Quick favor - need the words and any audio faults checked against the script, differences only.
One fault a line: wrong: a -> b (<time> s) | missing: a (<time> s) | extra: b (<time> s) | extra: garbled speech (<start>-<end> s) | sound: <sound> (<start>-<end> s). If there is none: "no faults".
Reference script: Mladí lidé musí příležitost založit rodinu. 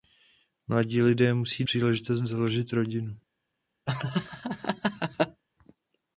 sound: laugh (3.9-5.4 s)